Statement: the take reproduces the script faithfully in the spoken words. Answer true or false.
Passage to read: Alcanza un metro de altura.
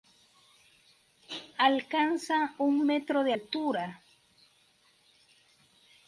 true